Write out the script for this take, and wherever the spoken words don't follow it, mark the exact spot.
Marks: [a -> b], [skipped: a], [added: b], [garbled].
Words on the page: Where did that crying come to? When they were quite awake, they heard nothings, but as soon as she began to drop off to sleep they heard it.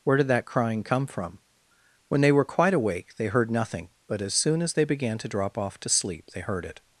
Where did that crying come [to? -> from] When they were quite awake, they heard [nothings, -> nothing] but as soon as [she -> they] began to drop off to sleep they heard it.